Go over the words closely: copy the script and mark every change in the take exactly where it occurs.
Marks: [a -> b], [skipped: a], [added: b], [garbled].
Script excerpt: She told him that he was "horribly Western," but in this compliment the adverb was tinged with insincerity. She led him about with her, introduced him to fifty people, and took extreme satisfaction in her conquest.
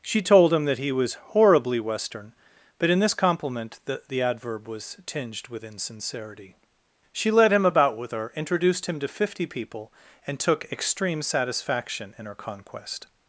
She told him that he was "horribly Western," but in this compliment the [added: the] adverb was tinged with insincerity. She led him about with her, introduced him to fifty people, and took extreme satisfaction in her conquest.